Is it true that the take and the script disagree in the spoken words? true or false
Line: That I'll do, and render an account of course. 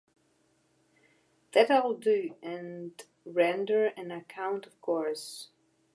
false